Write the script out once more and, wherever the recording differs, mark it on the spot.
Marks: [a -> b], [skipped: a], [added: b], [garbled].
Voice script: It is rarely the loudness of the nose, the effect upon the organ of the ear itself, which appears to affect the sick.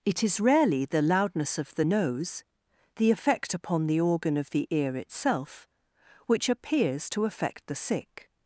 It is rarely the loudness of the nose, the effect upon the organ of the ear itself, which appears to affect the sick.